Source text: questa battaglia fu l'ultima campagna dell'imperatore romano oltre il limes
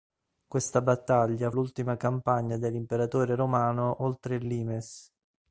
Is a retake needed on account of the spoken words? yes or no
yes